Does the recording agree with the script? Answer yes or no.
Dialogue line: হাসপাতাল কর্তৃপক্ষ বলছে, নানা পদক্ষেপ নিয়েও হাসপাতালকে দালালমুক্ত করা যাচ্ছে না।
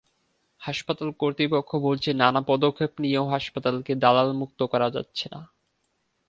yes